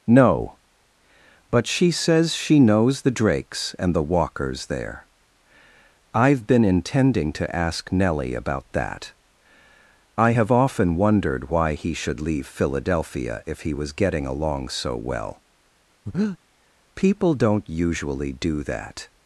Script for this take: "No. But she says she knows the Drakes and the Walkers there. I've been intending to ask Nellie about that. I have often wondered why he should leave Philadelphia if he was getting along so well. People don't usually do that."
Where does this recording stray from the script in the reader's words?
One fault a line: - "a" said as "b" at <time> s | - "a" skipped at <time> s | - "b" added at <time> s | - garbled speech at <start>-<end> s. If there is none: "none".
none